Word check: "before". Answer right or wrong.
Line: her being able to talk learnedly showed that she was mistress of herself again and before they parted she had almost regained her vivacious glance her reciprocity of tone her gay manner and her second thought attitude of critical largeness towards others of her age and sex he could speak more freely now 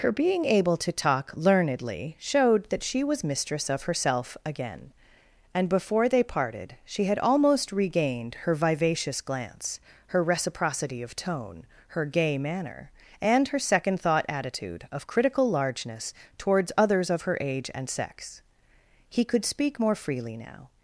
right